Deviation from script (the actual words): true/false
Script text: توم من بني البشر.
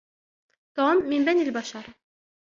false